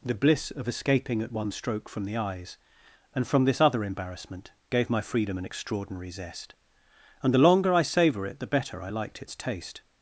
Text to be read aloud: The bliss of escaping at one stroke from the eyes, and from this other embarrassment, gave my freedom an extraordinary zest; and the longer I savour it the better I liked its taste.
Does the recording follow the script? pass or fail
pass